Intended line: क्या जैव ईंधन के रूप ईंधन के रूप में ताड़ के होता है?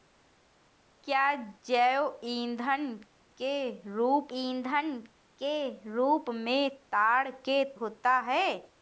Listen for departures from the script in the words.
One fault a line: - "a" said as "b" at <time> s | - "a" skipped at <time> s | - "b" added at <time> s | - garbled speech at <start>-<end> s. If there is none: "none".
none